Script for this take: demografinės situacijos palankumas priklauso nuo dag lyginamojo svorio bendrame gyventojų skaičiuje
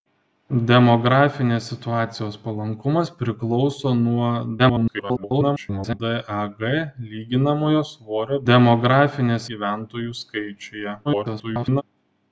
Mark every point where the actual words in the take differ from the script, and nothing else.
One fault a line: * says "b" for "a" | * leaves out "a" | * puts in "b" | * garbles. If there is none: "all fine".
* garbles
* says "demografinės" for "bendrame"
* garbles